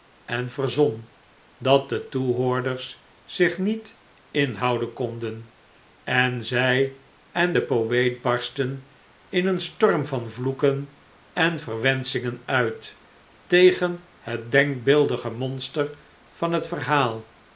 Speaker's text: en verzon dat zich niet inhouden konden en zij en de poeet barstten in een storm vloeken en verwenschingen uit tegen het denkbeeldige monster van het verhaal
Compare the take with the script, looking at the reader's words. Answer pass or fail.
fail